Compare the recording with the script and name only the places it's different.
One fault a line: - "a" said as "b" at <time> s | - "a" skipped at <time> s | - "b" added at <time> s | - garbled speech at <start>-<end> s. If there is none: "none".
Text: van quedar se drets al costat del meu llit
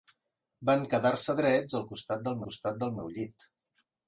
- "costat del" added at 2.5 s